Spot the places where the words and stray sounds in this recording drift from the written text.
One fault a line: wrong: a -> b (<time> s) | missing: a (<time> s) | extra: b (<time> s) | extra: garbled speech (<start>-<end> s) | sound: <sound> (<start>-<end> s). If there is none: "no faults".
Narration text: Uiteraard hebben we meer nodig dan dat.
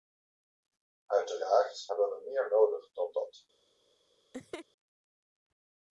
sound: laugh (4.3-4.7 s)